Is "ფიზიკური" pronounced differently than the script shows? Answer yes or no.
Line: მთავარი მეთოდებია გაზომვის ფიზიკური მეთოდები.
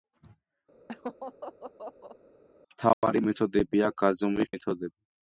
yes